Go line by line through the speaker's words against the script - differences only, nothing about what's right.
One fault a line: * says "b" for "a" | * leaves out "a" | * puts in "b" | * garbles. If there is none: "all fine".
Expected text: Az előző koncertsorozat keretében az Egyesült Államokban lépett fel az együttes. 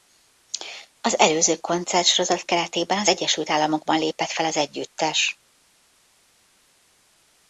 all fine